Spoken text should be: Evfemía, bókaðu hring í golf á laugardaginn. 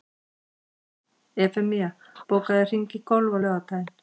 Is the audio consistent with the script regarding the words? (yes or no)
yes